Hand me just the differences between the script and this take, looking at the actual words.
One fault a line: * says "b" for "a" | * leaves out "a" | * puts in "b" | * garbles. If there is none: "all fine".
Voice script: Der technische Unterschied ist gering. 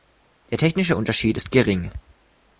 all fine